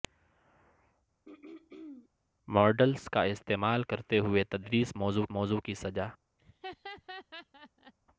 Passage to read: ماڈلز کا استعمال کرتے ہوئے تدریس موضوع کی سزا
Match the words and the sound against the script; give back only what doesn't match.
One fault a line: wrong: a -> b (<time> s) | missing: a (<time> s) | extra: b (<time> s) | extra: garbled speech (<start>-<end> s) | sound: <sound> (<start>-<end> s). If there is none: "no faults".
sound: throat clearing (1.2-2.1 s)
extra: موضوع (5.3 s)
sound: laugh (6.4-7.9 s)